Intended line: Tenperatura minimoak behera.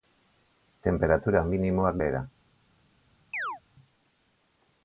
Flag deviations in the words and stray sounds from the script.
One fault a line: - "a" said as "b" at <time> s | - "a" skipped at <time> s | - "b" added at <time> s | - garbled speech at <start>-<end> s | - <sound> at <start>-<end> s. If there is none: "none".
- chirp at 3.3-3.6 s